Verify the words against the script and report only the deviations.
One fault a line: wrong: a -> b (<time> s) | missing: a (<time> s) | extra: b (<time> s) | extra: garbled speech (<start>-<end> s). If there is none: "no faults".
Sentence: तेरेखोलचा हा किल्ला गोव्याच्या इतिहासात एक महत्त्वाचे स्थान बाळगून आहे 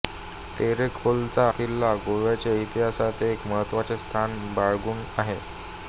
missing: हा (1.4 s)